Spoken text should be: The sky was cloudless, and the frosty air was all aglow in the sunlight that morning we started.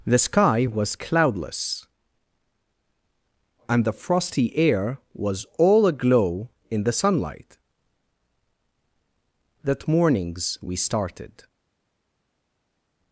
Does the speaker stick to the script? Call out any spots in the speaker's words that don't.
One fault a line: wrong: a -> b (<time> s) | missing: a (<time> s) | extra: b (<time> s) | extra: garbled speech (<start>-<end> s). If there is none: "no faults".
wrong: morning -> mornings (9.9 s)